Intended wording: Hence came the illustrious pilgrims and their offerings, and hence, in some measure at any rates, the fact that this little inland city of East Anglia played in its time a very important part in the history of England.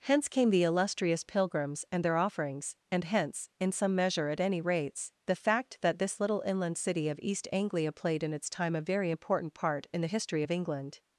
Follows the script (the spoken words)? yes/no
yes